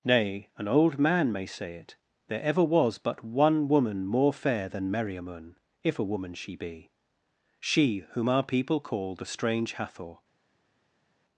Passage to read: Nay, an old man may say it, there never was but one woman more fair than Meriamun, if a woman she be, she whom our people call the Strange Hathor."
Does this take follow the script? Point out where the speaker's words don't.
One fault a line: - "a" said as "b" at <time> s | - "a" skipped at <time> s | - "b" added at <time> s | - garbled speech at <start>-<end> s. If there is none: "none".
- "never" said as "ever" at 2.4 s